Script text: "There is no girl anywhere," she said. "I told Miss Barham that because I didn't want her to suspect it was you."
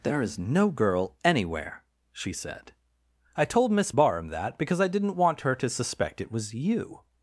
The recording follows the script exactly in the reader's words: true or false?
true